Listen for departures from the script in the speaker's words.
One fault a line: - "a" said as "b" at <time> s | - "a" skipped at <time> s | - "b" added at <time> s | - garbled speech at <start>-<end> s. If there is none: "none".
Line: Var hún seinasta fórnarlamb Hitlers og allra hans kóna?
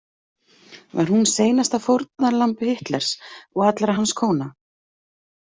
none